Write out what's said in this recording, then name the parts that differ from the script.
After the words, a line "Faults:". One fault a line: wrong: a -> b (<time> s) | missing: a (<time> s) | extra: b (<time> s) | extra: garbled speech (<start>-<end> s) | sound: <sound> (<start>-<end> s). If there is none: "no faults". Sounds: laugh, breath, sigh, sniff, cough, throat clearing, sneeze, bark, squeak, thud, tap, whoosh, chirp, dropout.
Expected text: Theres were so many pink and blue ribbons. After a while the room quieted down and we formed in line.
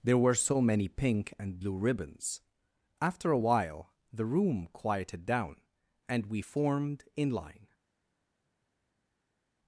There were so many pink and blue ribbons. After a while the room quieted down and we formed in line.
Faults:
wrong: Theres -> There (0.0 s)